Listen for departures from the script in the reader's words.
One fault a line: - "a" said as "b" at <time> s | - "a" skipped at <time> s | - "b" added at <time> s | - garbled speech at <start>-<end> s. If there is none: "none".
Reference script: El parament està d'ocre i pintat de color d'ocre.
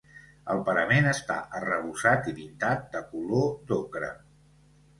- "d'ocre" said as "arrebossat" at 1.6 s